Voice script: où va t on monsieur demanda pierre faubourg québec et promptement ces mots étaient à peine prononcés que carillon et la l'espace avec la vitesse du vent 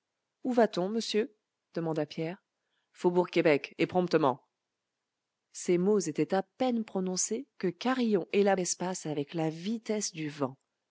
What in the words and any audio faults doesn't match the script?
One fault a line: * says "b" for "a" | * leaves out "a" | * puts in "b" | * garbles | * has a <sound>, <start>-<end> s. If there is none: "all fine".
all fine